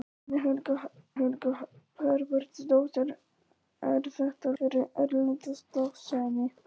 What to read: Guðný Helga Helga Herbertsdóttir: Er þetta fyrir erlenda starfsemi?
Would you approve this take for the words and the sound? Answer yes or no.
yes